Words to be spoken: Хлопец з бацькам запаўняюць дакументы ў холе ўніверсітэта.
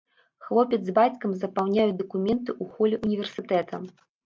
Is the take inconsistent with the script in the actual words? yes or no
no